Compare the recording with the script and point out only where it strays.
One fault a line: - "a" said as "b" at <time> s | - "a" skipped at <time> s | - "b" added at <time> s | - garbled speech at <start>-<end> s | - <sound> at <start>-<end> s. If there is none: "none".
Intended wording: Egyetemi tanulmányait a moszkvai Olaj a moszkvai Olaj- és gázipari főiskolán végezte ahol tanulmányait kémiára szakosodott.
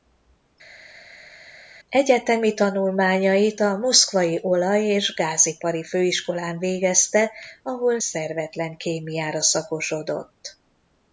- "a moszkvai Olaj" skipped at 4.9 s
- "tanulmányait" said as "szervetlen" at 8.0 s